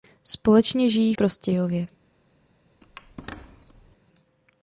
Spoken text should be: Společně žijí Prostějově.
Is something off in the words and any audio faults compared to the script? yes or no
yes